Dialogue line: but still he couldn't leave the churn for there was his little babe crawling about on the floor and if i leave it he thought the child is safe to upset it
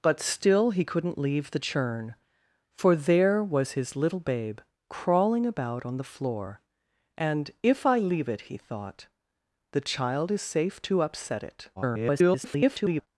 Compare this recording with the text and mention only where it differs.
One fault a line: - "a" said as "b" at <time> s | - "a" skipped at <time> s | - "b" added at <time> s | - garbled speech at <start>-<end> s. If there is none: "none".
- garbled speech at 11.8-13.1 s